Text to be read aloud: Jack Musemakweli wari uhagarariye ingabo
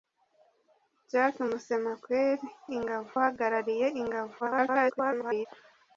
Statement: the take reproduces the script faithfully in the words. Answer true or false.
false